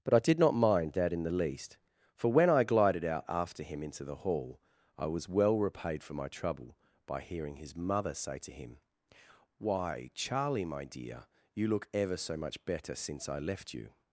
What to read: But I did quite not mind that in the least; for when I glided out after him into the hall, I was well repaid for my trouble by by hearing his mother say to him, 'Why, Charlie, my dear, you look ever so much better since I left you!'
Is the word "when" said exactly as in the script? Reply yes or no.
yes